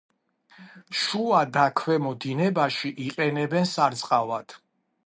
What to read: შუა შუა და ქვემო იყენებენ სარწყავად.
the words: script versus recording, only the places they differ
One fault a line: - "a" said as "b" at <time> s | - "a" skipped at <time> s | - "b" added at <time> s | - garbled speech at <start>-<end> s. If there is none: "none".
- "შუა" skipped at 1.4 s
- "დინებაში" added at 2.2 s